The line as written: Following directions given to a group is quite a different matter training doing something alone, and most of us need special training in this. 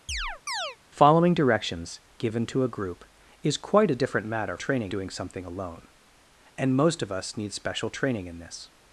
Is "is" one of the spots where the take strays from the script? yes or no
no